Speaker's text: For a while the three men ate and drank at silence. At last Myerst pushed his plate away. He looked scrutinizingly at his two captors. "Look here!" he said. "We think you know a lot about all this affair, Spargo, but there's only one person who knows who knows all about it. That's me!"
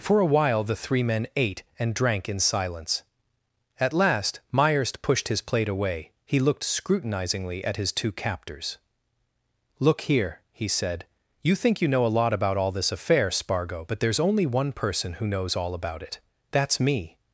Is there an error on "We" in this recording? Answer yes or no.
yes